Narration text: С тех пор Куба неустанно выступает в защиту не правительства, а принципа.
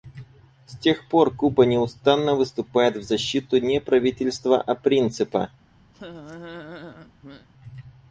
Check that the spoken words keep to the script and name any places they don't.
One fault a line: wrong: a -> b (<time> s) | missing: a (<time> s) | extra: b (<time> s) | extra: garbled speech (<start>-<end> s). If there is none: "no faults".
no faults